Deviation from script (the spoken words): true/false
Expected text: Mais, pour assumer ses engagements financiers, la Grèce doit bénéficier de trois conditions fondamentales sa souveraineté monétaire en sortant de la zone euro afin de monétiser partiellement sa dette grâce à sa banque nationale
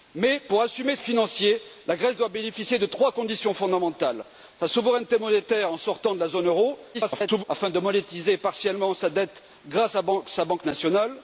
true